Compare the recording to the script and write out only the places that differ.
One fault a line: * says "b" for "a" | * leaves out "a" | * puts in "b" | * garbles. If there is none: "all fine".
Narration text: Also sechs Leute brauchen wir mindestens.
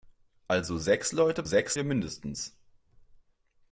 * says "sechs" for "brauchen"